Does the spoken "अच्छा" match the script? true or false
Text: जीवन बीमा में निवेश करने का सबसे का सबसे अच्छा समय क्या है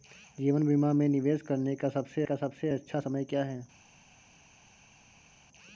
true